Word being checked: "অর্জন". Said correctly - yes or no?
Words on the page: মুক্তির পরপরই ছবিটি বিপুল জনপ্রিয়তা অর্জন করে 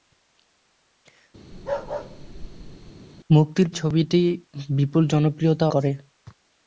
no